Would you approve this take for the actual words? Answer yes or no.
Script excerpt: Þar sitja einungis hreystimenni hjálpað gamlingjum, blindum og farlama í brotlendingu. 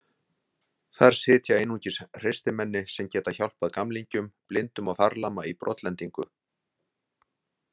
no